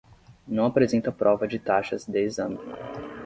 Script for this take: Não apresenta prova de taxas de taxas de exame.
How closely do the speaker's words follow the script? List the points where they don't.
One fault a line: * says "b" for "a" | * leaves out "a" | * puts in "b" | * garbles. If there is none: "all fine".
* leaves out "taxas de"